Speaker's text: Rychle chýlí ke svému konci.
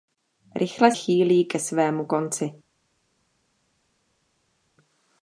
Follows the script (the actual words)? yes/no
yes